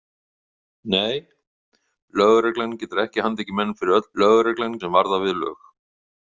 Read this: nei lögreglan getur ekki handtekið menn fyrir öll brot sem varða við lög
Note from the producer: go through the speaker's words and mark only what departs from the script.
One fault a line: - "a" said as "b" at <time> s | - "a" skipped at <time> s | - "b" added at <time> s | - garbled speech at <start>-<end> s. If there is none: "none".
- "brot" said as "lögreglan" at 4.2 s